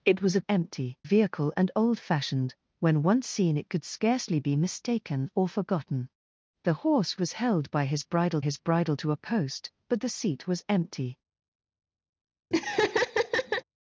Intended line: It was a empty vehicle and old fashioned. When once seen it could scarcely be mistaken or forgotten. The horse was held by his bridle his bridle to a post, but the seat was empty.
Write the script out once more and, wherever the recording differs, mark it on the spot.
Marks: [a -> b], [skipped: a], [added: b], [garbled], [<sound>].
It was a empty vehicle and old fashioned. When once seen it could scarcely be mistaken or forgotten. The horse was held by his bridle his bridle to a post, but the seat was empty. [laugh]